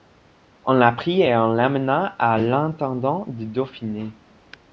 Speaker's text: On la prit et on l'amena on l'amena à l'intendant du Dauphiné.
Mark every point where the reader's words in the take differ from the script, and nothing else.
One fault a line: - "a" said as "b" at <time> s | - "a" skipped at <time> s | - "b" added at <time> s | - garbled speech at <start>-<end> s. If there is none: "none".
- "on l'amena" skipped at 2.1 s